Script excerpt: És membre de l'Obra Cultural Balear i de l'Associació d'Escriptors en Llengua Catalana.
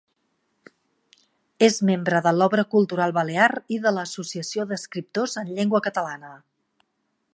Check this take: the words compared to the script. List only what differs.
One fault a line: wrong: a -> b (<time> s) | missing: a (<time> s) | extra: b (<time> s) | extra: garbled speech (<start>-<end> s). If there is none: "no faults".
no faults